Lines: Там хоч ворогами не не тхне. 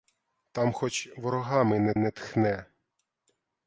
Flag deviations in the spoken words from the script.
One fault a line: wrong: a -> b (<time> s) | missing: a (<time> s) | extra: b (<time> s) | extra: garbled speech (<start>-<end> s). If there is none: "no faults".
no faults